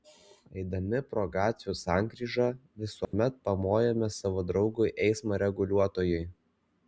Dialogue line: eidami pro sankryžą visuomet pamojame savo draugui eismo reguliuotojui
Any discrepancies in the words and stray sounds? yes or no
yes